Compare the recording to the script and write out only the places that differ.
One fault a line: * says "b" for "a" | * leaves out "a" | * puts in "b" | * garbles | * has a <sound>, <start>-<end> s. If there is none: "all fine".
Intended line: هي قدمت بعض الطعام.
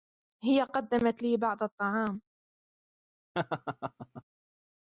* puts in "لي"
* has a laugh, 3.3-4.2 s